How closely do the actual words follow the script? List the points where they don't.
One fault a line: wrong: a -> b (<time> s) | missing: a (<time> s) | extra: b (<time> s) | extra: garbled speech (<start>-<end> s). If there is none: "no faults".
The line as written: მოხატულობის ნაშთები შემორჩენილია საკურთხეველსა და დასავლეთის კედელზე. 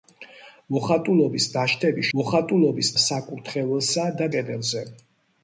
wrong: შემორჩენილია -> მოხატულობის (2.2 s)
missing: დასავლეთის (4.3 s)